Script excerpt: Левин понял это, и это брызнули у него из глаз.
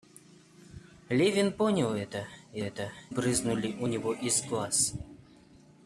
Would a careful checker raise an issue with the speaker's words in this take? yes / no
no